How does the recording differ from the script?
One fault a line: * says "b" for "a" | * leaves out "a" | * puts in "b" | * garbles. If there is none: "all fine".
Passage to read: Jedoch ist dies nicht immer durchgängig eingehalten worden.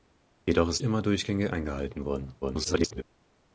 * leaves out "dies nicht"
* garbles